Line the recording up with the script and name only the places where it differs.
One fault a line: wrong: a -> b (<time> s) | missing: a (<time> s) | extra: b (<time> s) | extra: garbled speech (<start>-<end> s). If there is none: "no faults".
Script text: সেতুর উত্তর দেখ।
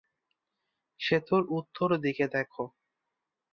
extra: দিকে (2.0 s)